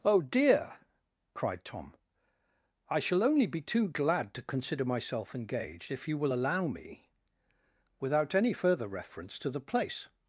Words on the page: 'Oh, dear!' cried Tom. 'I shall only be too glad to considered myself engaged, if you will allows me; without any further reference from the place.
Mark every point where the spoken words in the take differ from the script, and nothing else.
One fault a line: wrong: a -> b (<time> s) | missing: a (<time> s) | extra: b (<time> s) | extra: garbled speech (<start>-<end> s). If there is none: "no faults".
wrong: considered -> consider (4.4 s)
wrong: allows -> allow (6.3 s)
wrong: from -> to (9.4 s)